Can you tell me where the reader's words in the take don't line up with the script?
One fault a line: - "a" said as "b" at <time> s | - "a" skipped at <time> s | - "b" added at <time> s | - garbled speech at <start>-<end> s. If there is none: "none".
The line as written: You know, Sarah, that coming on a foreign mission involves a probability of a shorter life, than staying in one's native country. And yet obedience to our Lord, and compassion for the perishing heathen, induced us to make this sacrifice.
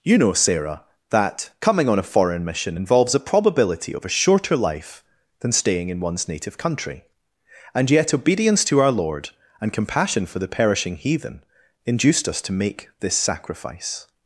none